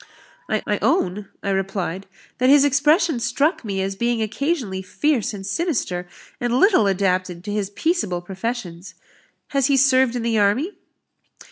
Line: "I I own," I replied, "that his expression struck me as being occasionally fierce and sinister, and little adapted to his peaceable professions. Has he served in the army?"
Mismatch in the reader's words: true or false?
false